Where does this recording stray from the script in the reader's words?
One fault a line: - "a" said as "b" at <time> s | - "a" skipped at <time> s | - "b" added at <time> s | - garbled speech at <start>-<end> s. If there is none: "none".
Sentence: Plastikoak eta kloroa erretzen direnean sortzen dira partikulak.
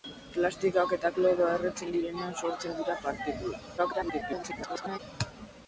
- garbled speech at 3.8-5.0 s